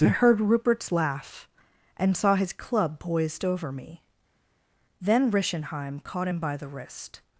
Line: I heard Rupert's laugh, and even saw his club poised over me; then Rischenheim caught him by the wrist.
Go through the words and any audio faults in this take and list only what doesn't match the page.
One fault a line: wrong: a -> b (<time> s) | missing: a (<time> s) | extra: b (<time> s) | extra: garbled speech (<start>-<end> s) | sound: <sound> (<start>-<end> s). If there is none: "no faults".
missing: even (2.2 s)